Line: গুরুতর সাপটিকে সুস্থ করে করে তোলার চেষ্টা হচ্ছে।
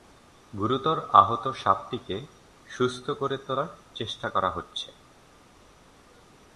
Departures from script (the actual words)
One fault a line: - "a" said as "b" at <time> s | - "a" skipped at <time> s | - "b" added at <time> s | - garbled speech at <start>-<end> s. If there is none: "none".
- "আহত" added at 1.1 s
- "করে" skipped at 3.4 s
- "করা" added at 4.3 s